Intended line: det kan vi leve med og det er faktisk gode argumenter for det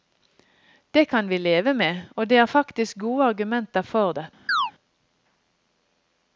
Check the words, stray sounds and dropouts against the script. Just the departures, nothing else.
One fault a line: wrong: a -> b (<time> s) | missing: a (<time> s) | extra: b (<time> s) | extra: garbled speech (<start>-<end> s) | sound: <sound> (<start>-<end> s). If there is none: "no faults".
sound: chirp (4.5-4.7 s)